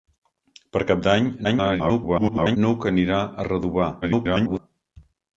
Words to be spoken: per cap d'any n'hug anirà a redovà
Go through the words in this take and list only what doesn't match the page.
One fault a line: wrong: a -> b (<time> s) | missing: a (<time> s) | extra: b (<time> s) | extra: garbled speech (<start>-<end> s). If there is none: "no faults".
extra: garbled speech (1.4-2.6 s)
extra: garbled speech (4.0-4.6 s)